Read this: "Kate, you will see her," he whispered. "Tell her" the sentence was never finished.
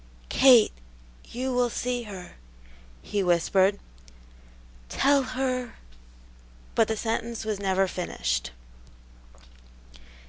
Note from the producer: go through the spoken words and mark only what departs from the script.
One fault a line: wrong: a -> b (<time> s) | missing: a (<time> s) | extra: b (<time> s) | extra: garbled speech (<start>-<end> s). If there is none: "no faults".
extra: but (6.7 s)